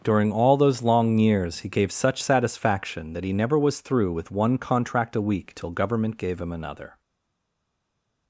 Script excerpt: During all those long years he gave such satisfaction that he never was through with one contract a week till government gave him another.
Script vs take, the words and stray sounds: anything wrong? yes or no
no